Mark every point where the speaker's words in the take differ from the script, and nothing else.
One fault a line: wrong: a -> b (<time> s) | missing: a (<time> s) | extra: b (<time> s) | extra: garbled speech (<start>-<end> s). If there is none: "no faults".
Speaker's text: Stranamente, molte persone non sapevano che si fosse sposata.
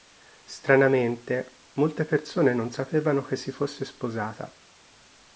no faults